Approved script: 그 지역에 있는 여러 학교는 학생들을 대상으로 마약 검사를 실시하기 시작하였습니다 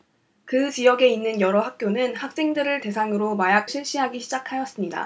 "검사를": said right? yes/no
no